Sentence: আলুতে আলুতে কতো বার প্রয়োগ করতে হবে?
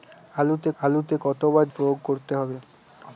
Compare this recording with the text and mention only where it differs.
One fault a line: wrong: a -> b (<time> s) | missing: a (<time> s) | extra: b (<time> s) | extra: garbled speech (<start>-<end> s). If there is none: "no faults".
no faults